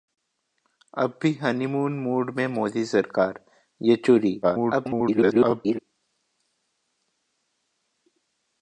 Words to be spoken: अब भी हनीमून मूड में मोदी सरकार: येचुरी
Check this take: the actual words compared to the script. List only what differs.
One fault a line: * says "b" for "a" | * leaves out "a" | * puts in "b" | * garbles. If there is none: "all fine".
* garbles